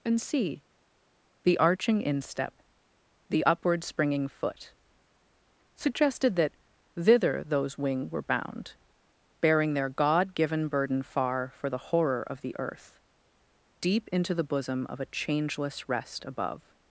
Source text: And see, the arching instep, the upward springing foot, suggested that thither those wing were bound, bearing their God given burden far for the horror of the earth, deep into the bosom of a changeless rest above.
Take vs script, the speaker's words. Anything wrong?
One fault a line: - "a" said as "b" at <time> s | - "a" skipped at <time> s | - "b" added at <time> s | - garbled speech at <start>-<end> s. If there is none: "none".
none